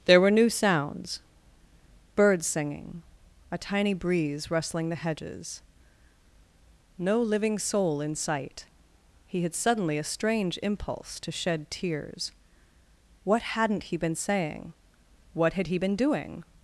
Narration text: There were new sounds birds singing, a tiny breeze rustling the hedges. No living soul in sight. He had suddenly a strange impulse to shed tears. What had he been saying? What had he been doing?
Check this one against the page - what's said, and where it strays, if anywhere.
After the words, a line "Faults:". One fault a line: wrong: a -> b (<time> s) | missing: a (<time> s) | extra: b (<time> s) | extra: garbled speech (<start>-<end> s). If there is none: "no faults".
There were new sounds birds singing, a tiny breeze rustling the hedges. No living soul in sight. He had suddenly a strange impulse to shed tears. What hadn't he been saying? What had he been doing?
Faults:
wrong: had -> hadn't (13.4 s)